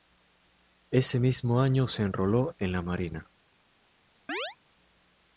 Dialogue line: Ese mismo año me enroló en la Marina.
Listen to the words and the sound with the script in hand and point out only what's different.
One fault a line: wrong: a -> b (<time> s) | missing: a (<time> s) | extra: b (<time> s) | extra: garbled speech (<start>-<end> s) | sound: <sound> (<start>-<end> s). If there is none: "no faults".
wrong: me -> se (1.9 s)
sound: chirp (4.3-4.6 s)